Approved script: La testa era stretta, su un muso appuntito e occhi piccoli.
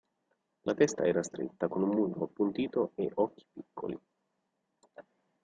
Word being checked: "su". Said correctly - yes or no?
no